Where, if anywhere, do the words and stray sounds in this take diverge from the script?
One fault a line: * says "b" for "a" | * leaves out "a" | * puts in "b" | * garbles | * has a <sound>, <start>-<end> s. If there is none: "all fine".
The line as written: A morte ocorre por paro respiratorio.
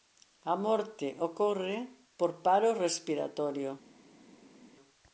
all fine